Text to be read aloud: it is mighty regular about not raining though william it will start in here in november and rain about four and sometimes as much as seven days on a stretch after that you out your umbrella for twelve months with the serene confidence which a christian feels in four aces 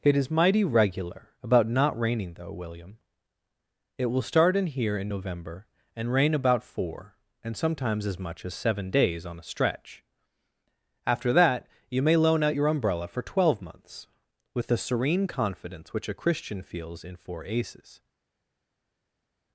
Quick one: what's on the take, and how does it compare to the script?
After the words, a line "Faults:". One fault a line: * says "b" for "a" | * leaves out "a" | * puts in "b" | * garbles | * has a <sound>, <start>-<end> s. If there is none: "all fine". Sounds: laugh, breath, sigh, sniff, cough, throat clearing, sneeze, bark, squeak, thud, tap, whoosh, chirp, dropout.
it is mighty regular about not raining though william it will start in here in november and rain about four and sometimes as much as seven days on a stretch after that you may loan out your umbrella for twelve months with the serene confidence which a christian feels in four aces
Faults:
* puts in "may loan"